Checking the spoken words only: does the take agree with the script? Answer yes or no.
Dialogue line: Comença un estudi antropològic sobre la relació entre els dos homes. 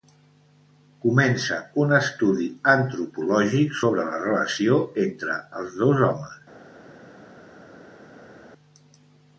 yes